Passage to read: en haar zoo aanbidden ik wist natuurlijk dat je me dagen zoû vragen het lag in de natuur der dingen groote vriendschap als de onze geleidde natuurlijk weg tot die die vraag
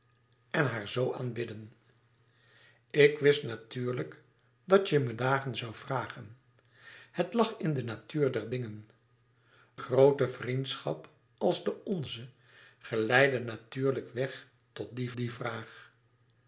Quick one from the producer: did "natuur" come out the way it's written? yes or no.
yes